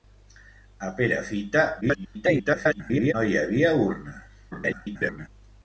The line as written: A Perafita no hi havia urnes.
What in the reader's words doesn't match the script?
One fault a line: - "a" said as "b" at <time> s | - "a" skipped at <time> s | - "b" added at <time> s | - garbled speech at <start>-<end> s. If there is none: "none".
- garbled speech at 1.8-3.1 s
- garbled speech at 4.5-5.3 s